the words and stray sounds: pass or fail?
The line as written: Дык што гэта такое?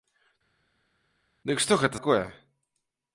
pass